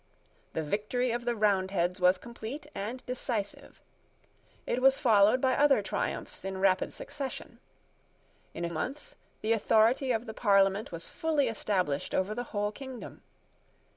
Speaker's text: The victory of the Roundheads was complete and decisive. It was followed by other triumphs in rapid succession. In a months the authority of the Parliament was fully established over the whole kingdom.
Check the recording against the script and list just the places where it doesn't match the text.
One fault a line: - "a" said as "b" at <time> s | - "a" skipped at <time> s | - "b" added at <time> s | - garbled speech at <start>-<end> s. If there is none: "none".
none